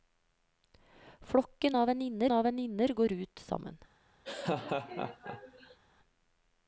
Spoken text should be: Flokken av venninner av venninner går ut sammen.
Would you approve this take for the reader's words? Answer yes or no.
yes